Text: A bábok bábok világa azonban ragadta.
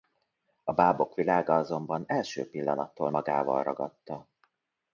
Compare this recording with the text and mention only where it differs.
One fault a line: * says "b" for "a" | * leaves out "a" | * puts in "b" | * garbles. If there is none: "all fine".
* leaves out "bábok"
* puts in "első pillanattól magával"